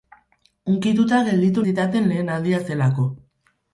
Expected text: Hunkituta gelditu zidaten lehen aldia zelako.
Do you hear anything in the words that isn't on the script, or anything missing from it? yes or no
no